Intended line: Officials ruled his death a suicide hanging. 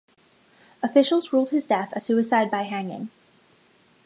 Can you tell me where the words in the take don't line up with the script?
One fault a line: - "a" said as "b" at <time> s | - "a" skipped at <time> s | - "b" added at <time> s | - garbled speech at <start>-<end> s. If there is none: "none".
- "by" added at 2.5 s